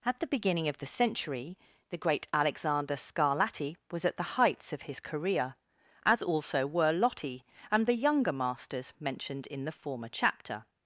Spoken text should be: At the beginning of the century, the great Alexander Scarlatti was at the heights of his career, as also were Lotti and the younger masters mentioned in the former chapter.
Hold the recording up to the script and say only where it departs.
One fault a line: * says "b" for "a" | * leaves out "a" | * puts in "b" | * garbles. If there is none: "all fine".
all fine